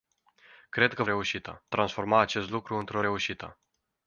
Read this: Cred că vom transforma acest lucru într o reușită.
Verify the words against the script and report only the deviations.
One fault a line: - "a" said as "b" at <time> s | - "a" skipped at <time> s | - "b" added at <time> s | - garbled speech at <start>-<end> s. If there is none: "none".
- "vom" said as "reușită" at 1.0 s